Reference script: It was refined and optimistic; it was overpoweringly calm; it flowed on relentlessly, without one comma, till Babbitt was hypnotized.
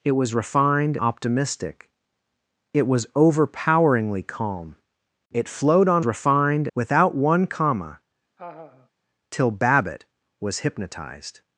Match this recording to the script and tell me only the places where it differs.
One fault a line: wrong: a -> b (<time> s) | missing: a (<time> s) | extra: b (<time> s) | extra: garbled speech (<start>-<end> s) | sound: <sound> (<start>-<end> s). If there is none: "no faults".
missing: and (1.0 s)
wrong: relentlessly -> refined (6.0 s)
sound: laugh (8.4-8.9 s)